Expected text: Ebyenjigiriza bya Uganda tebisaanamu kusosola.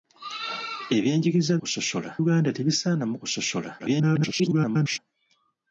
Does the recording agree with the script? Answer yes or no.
no